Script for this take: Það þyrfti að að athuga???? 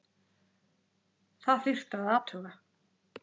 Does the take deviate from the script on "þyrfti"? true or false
false